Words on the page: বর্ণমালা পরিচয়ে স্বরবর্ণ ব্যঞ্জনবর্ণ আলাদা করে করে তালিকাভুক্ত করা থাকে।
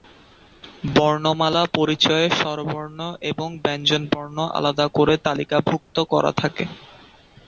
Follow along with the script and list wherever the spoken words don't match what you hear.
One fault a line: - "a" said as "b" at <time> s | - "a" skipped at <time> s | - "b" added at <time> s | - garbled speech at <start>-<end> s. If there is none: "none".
- "এবং" added at 3.3 s
- "করে" skipped at 5.1 s